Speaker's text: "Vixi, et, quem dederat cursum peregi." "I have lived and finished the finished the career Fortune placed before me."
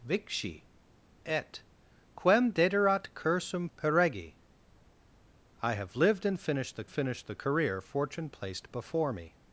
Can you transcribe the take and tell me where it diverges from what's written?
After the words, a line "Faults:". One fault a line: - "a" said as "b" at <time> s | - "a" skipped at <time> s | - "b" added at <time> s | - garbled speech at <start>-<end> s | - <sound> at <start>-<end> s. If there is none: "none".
"Vixi, et, quem dederat cursum peregi." "I have lived and finished the finished the career Fortune placed before me."
Faults:
none